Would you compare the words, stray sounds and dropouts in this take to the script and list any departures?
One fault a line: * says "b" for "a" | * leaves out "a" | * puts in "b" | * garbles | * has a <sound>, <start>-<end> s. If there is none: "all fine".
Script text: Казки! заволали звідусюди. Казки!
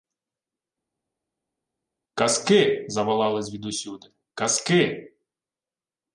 all fine